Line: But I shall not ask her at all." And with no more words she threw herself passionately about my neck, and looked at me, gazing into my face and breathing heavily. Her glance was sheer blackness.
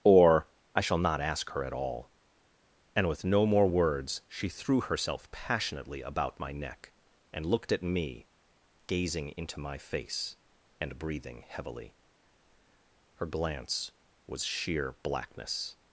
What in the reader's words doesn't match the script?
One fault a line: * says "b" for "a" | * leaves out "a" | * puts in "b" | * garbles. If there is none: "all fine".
* says "Or" for "But"